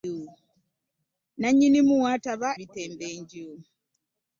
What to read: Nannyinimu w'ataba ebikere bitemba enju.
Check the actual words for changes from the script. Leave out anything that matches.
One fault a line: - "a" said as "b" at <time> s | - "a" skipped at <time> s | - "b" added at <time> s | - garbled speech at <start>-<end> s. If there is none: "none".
- "ebikere" skipped at 2.5 s